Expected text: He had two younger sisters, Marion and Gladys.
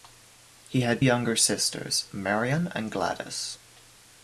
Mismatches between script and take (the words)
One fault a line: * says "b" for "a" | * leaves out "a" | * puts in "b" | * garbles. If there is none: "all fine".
* leaves out "two"